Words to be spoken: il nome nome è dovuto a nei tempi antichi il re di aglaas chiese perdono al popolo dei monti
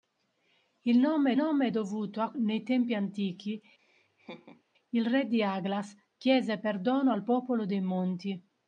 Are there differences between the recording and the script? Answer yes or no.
no